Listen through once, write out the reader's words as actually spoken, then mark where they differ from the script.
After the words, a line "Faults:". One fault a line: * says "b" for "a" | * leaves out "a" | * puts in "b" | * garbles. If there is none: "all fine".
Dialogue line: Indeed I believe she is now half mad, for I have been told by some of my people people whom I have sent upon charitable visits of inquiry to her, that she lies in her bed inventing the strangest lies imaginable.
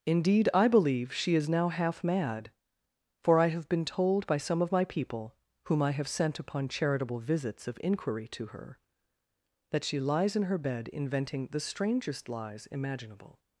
Indeed I believe she is now half mad, for I have been told by some of my people whom I have sent upon charitable visits of inquiry to her, that she lies in her bed inventing the strangest lies imaginable.
Faults:
* leaves out "people"